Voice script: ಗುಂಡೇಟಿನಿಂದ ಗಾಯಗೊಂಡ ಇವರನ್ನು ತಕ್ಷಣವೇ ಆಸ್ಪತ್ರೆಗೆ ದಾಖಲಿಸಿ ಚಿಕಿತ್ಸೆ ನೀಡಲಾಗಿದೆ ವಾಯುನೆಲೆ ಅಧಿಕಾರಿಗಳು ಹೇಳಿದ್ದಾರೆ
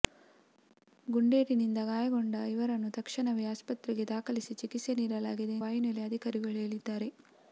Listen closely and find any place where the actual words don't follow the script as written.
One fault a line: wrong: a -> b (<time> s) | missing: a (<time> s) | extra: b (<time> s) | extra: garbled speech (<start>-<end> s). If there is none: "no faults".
no faults